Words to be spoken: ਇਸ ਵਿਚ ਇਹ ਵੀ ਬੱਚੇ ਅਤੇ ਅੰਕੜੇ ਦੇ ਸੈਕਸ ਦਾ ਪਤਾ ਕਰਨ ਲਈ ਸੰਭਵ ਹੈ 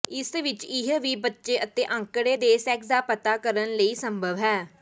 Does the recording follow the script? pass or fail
pass